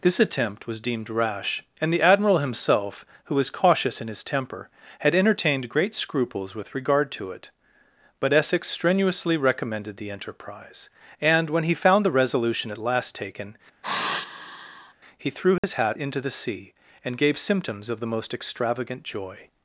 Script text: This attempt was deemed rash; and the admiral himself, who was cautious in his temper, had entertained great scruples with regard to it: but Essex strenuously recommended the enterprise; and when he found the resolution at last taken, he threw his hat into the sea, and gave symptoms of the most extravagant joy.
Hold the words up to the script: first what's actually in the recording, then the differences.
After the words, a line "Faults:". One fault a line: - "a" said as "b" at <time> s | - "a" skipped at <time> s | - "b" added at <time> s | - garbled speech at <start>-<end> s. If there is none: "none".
This attempt was deemed rash; and the admiral himself, who was cautious in his temper, had entertained great scruples with regard to it: but Essex strenuously recommended the enterprise; and when he found the resolution at last taken, he threw his hat into the sea, and gave symptoms of the most extravagant joy.
Faults:
none